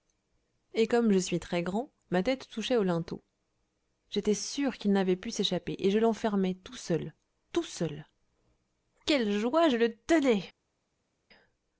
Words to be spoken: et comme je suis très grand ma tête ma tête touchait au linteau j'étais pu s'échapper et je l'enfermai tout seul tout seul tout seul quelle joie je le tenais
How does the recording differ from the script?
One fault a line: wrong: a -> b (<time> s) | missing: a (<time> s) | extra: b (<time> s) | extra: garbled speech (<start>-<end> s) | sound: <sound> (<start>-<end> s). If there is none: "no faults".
missing: ma tête (2.5 s)
extra: sûr qu'il n'avait (4.3 s)
missing: tout seul (8.1 s)